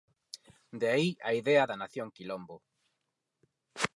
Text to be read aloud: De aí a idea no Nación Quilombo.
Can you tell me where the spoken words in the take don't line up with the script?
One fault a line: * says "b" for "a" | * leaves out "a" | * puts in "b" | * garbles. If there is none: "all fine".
* says "da" for "no"